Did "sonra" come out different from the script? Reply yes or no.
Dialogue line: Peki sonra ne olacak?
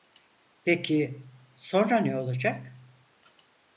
no